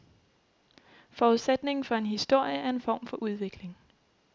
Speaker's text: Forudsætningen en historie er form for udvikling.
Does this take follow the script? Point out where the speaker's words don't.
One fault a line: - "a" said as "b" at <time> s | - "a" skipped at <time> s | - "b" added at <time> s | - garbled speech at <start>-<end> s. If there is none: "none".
- "for" added at 1.8 s
- "en" added at 2.7 s